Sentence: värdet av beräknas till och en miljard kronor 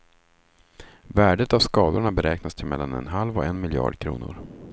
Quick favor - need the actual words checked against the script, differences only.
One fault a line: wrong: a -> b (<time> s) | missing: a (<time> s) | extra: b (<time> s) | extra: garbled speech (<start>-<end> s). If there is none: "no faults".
extra: skadorna (1.6 s)
extra: mellan en halv (2.7 s)